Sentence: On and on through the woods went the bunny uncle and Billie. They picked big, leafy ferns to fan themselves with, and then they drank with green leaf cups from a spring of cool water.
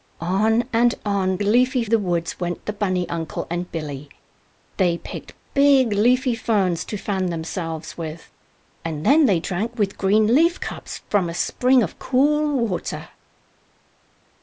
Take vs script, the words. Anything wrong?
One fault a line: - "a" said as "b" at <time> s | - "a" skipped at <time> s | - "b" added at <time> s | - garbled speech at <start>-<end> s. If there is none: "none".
- "through" said as "leafy" at 1.4 s